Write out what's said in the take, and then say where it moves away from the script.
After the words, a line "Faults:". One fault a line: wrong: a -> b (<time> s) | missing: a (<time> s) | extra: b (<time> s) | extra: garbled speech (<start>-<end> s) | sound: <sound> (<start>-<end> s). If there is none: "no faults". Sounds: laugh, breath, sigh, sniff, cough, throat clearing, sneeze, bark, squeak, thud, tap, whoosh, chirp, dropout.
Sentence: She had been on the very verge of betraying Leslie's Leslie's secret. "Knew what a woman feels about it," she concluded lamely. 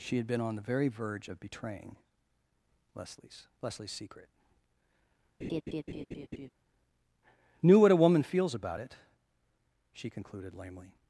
She had been on the very verge of betraying Leslie's Leslie's secret. "Knew what a woman feels about it," she concluded lamely.
Faults:
sound: laugh (5.4-6.5 s)